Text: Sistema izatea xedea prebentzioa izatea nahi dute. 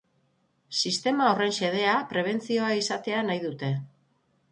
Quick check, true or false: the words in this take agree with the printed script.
false